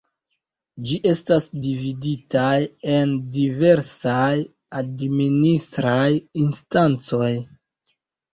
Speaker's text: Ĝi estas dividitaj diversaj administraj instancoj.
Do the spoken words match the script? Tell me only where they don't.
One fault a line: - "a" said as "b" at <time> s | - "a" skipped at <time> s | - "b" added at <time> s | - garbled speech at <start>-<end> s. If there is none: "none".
- "en" added at 3.0 s